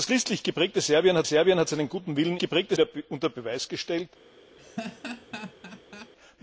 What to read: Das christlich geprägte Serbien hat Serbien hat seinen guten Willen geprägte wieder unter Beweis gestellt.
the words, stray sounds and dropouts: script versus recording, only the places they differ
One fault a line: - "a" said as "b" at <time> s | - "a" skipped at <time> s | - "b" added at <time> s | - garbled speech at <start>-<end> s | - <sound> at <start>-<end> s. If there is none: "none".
- laugh at 4.6-6.1 s